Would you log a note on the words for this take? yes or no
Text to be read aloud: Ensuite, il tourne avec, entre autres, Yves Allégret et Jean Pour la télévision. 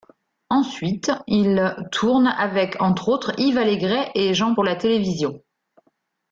no